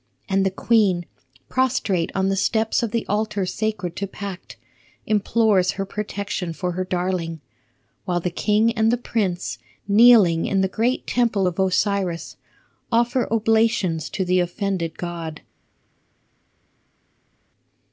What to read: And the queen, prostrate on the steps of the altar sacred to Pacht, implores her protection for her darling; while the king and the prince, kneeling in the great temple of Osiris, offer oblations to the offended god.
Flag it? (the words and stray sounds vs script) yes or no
no